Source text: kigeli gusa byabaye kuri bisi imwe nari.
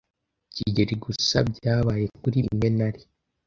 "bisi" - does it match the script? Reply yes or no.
no